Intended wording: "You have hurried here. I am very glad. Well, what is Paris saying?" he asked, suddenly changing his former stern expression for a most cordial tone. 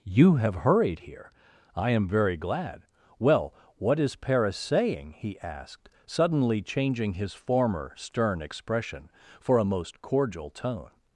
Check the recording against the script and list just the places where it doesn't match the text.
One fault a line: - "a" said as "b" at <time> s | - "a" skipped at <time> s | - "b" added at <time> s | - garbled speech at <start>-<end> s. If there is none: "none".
none